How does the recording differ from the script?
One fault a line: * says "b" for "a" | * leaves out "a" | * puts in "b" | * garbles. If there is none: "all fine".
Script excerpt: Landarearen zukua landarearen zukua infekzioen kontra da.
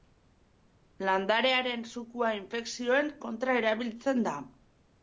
* leaves out "landarearen zukua"
* puts in "erabiltzen"